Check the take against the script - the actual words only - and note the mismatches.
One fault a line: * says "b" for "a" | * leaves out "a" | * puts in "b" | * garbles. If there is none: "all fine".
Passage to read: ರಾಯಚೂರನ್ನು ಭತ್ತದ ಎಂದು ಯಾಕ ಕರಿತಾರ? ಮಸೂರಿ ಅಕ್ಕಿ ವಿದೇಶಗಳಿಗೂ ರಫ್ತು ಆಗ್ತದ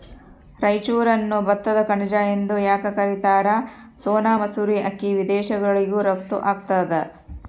* puts in "ಕಣಜ"
* puts in "ಸೋನಾ"